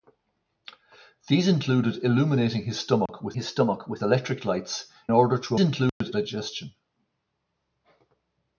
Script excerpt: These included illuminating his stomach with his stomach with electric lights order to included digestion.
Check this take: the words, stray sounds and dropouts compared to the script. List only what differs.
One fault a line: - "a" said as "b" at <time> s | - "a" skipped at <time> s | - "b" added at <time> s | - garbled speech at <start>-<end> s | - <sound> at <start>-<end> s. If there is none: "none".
- dropout at 3.1-3.1 s
- dropout at 5.9-6.0 s